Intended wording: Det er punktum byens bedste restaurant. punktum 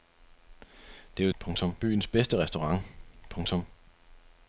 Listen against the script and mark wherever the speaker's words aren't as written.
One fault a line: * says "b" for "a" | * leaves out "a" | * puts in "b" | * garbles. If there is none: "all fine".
all fine